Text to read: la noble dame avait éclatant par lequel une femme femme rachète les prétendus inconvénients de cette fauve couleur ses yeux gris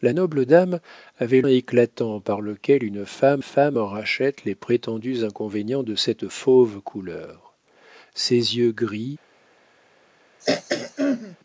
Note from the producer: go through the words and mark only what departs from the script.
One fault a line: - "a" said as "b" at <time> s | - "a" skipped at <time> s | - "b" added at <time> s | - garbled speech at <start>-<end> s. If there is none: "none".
none